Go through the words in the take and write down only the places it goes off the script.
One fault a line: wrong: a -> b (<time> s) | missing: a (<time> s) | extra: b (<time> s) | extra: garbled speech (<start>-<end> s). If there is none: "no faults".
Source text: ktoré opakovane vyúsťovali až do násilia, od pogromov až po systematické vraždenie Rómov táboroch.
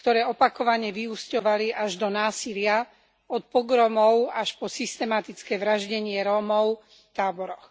no faults